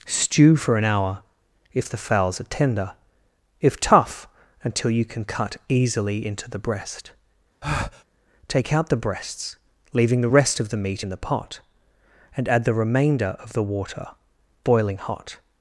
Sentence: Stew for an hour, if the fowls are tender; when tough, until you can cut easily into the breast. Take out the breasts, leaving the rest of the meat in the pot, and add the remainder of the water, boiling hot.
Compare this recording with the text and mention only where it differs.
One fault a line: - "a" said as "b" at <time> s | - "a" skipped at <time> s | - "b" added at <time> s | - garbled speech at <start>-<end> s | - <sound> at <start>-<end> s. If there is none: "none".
- "when" said as "if" at 3.6 s
- breath at 7.6-8.0 s